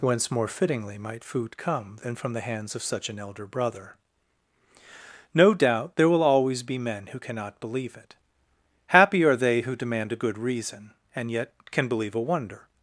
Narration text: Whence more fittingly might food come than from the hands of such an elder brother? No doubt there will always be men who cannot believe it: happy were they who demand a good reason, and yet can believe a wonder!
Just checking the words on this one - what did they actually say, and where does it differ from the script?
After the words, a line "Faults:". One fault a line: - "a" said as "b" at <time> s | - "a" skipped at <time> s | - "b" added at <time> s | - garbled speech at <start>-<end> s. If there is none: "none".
Whence more fittingly might food come than from the hands of such an elder brother? No doubt there will always be men who cannot believe it: happy are they who demand a good reason, and yet can believe a wonder!
Faults:
- "were" said as "are" at 9.2 s